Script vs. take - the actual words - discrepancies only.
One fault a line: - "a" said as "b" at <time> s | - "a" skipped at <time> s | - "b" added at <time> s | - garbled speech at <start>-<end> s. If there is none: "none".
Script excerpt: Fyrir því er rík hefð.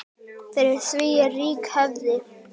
none